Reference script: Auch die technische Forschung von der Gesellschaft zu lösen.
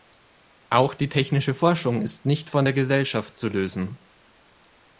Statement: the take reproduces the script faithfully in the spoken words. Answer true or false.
false